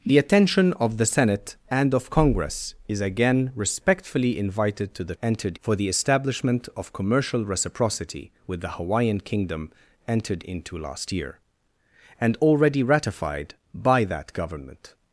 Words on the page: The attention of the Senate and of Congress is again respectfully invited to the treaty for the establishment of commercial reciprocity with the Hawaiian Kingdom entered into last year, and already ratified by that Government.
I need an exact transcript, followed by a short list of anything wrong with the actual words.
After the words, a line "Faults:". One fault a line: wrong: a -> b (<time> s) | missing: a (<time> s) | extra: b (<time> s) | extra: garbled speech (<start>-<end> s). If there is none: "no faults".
The attention of the Senate and of Congress is again respectfully invited to the entered for the establishment of commercial reciprocity with the Hawaiian Kingdom entered into last year, and already ratified by that Government.
Faults:
wrong: treaty -> entered (5.2 s)